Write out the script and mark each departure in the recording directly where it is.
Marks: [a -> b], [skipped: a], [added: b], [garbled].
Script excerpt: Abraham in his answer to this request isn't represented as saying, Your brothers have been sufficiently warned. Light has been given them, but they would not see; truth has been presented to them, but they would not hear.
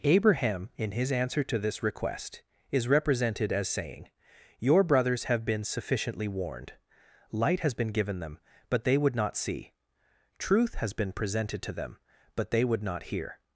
Abraham in his answer to this request [isn't -> is] represented as saying, Your brothers have been sufficiently warned. Light has been given them, but they would not see; truth has been presented to them, but they would not hear.